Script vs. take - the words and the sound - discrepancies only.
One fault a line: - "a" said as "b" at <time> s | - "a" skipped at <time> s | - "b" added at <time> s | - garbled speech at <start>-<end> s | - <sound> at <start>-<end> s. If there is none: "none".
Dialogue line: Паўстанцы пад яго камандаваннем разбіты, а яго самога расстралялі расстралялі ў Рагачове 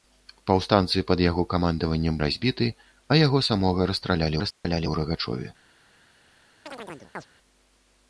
- dropout at 4.5-4.6 s
- chirp at 6.7-7.3 s